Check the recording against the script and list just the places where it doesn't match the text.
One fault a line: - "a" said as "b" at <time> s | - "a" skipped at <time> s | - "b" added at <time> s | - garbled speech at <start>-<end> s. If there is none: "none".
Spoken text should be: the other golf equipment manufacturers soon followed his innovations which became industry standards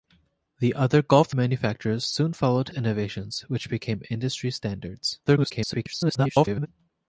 - "equipment" skipped at 1.4 s
- "his" skipped at 2.7 s
- garbled speech at 5.3-6.7 s